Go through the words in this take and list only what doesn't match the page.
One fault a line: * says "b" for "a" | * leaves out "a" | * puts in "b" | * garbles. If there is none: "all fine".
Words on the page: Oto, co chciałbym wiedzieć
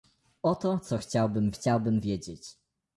* puts in "chciałbym"